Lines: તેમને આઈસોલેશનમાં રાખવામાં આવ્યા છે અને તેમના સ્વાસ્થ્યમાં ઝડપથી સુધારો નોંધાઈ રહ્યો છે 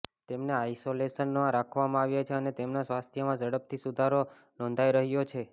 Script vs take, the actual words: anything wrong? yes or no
no